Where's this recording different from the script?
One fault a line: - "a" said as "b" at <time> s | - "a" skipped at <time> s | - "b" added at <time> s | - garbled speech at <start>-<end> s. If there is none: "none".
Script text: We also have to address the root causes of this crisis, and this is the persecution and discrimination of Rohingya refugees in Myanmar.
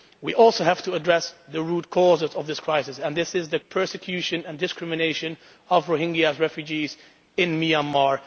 none